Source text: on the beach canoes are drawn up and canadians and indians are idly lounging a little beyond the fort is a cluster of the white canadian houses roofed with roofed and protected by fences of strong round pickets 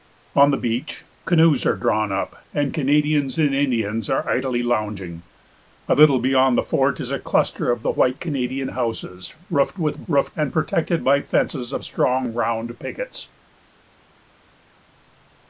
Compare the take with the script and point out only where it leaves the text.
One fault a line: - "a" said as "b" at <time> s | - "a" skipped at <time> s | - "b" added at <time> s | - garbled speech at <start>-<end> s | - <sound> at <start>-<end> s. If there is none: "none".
none